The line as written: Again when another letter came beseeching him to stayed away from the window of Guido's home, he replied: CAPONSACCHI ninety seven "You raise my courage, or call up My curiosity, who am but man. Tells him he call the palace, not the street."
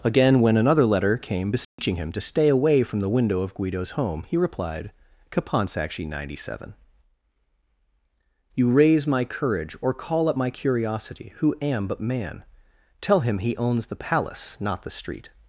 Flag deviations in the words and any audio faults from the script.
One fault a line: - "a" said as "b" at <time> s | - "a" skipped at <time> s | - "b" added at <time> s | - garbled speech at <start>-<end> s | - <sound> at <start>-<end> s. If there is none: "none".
- dropout at 1.6-1.8 s
- "stayed" said as "stay" at 2.2 s
- "Tells" said as "Tell" at 13.0 s
- "call" said as "owns" at 13.5 s